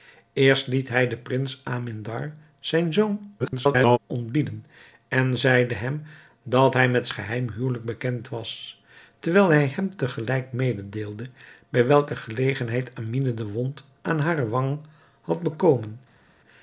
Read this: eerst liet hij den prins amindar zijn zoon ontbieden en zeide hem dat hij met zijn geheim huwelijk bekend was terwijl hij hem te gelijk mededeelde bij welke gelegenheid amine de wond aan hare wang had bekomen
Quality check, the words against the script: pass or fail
fail